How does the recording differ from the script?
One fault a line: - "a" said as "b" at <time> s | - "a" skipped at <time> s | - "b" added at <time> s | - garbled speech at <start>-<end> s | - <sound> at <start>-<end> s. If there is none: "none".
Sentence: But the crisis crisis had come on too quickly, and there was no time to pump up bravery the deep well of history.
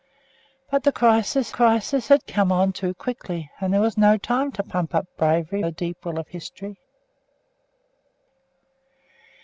none